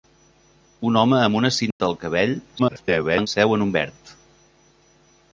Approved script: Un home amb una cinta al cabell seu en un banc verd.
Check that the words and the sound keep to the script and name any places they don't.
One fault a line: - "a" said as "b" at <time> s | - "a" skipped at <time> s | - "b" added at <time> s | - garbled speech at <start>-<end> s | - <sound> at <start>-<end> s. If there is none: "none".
- dropout at 1.7-1.8 s
- garbled speech at 2.6-3.3 s
- "banc" skipped at 3.7 s